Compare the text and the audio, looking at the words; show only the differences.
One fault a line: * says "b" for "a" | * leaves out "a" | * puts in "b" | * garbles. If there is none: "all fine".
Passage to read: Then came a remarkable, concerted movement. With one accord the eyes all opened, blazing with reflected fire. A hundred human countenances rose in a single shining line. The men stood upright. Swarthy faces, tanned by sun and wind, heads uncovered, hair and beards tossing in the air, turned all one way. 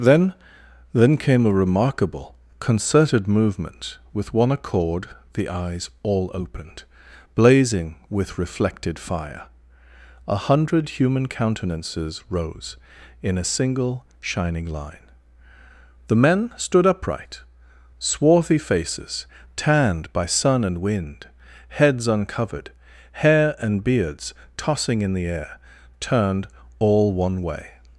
* puts in "then"